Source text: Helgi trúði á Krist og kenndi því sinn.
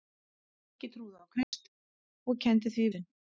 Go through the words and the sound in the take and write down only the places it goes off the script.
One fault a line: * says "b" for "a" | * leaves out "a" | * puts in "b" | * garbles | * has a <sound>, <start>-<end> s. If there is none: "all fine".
* has a dropout, 1.4-1.5 s